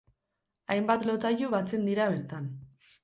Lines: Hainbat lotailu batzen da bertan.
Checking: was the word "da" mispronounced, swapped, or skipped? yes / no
yes